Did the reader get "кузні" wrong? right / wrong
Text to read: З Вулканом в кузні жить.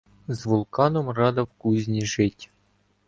right